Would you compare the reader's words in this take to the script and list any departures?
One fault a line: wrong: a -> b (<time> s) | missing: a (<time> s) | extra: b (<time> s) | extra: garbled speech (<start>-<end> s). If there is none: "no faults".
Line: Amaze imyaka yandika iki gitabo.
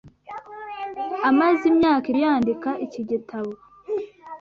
no faults